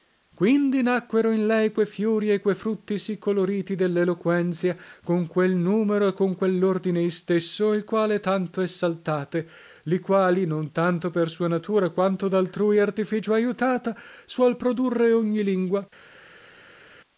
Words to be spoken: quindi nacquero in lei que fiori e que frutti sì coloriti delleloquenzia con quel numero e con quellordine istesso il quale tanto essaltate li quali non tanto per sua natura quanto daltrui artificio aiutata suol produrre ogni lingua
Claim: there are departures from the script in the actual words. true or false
false